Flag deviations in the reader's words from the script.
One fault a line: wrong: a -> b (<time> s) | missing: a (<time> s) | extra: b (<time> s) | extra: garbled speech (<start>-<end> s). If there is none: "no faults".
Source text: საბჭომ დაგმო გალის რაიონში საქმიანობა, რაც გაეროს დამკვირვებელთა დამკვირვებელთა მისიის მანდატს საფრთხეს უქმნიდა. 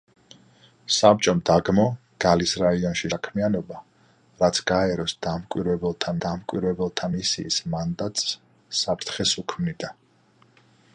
no faults